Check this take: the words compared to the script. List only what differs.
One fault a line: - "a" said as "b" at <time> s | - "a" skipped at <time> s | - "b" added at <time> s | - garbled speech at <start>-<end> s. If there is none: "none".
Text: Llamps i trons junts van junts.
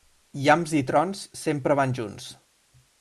- "junts" said as "sempre" at 1.4 s